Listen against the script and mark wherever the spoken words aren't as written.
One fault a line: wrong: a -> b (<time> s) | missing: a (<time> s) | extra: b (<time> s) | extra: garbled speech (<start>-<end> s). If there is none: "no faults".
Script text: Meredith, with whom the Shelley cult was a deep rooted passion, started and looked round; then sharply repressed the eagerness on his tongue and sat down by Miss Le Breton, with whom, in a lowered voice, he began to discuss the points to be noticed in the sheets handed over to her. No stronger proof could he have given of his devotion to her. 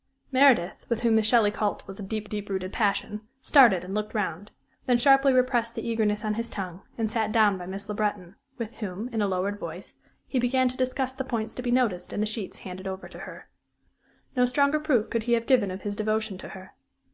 extra: deep (2.2 s)